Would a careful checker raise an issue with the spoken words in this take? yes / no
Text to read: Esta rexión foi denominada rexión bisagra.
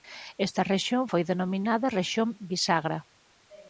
no